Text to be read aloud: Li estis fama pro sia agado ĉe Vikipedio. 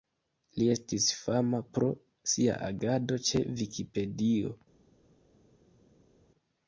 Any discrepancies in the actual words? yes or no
no